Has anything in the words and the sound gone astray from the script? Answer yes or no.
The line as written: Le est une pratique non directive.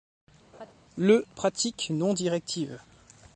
yes